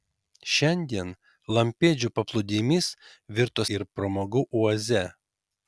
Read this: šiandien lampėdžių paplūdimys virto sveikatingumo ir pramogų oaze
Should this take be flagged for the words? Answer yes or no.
yes